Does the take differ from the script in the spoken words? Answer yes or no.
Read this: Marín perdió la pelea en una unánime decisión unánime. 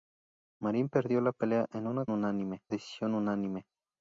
no